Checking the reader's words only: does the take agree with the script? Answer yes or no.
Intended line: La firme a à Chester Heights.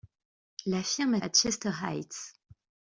yes